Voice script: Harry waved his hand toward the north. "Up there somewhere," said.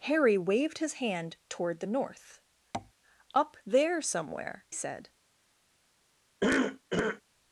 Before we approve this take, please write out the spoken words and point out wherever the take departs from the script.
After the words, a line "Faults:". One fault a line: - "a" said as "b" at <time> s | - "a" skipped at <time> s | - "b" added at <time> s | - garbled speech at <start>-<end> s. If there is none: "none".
Harry waved his hand toward the north. "Up there somewhere," said.
Faults:
none